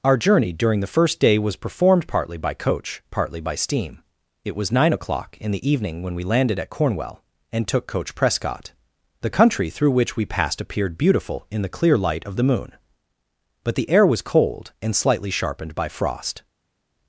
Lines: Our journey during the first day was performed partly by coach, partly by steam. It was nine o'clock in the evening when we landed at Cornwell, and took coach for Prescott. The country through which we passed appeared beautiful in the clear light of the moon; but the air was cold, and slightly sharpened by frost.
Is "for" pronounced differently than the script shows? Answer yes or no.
yes